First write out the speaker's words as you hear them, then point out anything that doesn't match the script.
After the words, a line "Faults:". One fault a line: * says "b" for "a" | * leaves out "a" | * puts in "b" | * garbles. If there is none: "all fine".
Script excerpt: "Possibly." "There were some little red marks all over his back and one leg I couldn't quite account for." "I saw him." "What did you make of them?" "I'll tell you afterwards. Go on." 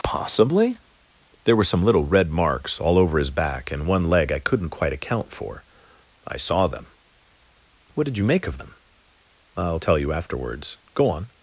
"Possibly." "There were some little red marks all over his back and one leg I couldn't quite account for." "I saw them." "What did you make of them?" "I'll tell you afterwards. Go on."
Faults:
* says "them" for "him"